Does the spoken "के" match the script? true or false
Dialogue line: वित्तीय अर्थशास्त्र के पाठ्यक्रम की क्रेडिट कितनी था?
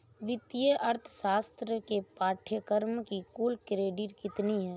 true